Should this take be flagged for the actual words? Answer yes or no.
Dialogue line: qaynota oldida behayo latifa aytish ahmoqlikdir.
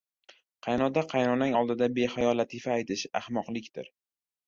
yes